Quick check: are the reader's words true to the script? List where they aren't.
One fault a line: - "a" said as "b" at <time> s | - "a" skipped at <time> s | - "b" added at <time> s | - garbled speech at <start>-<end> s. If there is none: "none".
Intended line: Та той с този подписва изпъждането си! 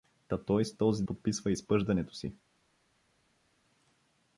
none